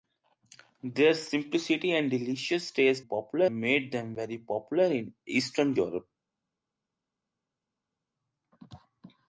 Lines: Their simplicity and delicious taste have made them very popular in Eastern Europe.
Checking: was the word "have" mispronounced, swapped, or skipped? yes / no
yes